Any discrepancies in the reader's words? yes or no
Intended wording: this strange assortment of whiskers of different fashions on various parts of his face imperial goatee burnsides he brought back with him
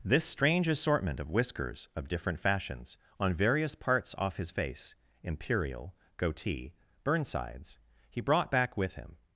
yes